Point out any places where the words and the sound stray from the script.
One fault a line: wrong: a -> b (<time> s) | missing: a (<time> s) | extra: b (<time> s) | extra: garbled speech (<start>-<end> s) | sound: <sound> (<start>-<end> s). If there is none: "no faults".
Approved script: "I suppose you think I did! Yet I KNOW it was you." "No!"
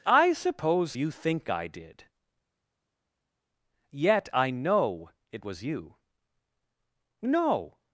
no faults